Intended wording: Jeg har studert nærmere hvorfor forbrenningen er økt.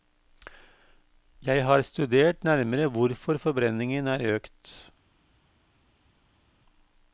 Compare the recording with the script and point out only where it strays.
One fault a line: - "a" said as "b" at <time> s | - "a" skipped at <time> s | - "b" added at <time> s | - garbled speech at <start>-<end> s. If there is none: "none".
none